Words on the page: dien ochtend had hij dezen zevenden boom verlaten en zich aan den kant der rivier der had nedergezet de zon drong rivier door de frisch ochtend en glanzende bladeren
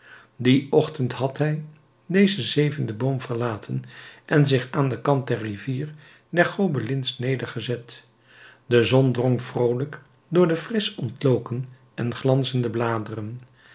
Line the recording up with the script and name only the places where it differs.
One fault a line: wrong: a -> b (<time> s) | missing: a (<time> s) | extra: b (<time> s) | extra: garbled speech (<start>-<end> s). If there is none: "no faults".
wrong: had -> gobelins (6.5 s)
wrong: rivier -> vroolijk (9.4 s)
wrong: ochtend -> ontloken (11.0 s)